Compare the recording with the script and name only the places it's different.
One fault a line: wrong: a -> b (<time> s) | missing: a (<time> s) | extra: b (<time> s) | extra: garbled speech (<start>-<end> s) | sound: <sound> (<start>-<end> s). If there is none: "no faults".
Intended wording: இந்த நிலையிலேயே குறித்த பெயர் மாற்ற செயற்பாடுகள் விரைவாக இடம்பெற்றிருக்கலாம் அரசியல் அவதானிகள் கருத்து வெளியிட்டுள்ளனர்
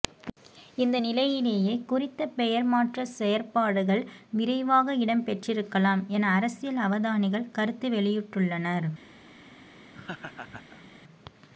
extra: என (6.1 s)
sound: laugh (9.9-10.9 s)